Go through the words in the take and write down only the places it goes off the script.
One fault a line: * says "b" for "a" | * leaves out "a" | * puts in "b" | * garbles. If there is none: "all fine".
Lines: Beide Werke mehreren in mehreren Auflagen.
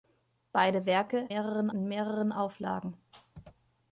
all fine